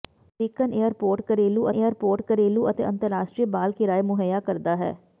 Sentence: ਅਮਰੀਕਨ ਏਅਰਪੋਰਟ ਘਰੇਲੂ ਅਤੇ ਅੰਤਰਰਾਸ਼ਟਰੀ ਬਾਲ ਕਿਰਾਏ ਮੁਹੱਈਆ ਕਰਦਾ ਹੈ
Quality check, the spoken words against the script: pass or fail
fail